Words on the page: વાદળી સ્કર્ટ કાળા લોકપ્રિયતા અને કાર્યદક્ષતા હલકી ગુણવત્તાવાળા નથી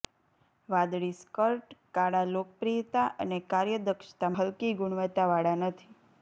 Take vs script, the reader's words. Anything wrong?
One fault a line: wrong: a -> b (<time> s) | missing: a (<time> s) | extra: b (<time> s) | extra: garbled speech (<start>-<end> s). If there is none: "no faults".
no faults